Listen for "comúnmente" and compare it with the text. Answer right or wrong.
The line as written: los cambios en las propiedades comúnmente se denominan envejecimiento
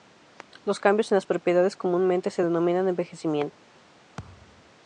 right